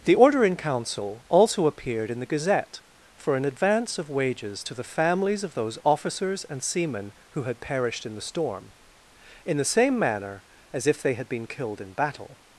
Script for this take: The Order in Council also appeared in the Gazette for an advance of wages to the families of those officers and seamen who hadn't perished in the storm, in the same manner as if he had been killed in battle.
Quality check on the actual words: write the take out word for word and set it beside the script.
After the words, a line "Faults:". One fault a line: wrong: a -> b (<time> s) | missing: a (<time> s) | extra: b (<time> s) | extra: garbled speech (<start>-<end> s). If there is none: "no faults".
The Order in Council also appeared in the Gazette for an advance of wages to the families of those officers and seamen who had perished in the storm, in the same manner as if they had been killed in battle.
Faults:
wrong: hadn't -> had (7.4 s)
wrong: he -> they (11.0 s)